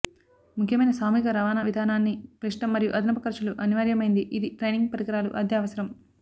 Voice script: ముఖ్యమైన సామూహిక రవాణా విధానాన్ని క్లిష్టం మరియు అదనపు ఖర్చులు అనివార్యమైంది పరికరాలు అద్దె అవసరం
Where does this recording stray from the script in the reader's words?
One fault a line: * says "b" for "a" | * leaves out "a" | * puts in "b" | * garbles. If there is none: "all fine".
* puts in "ఇది ట్రైనింగ్"